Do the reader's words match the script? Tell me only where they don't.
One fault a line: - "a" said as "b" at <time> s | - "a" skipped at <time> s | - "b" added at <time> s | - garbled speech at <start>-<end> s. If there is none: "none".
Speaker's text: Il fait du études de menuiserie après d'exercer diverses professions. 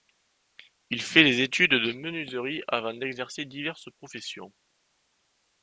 - "du" said as "des" at 1.2 s
- "après" said as "avant" at 2.7 s